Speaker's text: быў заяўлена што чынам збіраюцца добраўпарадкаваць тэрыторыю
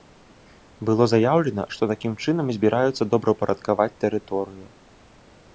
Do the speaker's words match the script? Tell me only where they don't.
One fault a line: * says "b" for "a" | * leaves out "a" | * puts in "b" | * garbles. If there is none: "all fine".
* says "было" for "быў"
* puts in "такім"